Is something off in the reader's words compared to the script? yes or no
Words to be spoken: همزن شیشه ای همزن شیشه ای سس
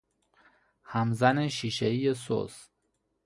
yes